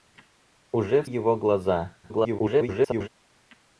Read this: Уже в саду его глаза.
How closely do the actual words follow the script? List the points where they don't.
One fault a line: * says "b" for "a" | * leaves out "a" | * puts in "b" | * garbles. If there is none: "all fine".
* leaves out "саду"
* garbles